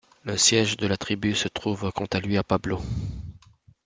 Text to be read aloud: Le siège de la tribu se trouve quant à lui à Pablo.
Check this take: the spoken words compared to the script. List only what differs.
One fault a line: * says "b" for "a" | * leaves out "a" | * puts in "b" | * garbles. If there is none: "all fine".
all fine